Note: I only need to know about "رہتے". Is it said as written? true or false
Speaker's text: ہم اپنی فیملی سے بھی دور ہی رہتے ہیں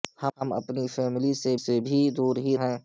false